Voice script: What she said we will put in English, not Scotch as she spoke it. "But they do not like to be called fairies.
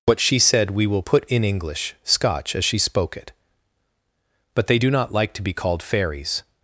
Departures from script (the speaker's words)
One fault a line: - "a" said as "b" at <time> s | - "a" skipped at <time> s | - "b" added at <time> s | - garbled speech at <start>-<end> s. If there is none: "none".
- "not" skipped at 1.9 s